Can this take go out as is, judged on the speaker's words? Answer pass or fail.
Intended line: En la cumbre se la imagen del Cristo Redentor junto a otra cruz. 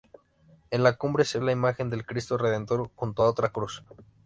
pass